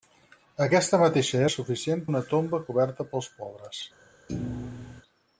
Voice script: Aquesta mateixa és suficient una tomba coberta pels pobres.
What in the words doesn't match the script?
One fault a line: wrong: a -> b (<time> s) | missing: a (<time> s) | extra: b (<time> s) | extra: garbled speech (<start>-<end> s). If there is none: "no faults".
no faults